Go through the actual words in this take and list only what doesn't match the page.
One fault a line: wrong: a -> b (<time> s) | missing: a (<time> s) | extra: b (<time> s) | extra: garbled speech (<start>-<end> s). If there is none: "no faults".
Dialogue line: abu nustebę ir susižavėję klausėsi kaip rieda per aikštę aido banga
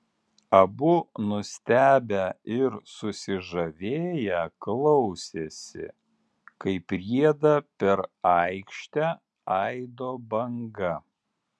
no faults